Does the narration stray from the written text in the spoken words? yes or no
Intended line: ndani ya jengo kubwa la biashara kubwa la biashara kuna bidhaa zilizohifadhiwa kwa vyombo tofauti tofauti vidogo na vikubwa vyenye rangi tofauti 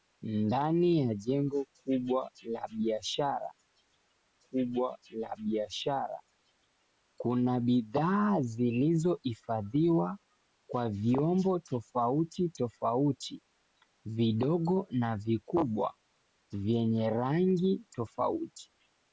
no